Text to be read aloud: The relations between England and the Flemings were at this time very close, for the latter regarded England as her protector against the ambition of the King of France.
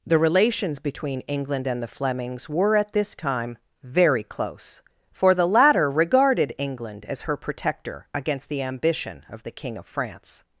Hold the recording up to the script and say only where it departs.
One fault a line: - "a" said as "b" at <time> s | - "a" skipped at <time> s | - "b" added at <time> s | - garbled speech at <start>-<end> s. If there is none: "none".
none